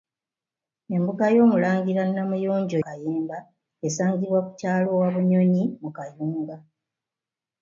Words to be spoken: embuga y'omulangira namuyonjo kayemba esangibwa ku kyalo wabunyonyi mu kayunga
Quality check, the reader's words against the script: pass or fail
pass